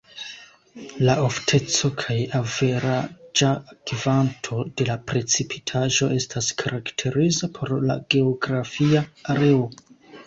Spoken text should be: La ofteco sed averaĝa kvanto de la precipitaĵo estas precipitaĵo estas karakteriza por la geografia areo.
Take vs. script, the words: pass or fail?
fail